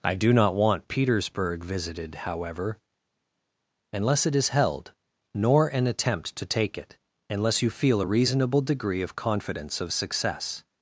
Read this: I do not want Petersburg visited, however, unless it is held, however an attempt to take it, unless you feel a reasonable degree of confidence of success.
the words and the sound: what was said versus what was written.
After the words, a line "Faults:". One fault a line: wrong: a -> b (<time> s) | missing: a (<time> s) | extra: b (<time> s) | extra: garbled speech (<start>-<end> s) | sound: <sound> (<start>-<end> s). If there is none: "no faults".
I do not want Petersburg visited, however, unless it is held, nor an attempt to take it, unless you feel a reasonable degree of confidence of success.
Faults:
wrong: however -> nor (5.3 s)